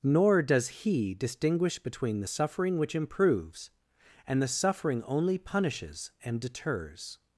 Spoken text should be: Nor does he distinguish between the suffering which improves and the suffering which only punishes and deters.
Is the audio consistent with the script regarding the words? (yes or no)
no